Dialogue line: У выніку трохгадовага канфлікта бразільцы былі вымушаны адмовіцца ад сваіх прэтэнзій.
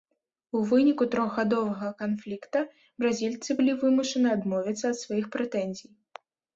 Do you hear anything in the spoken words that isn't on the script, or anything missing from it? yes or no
no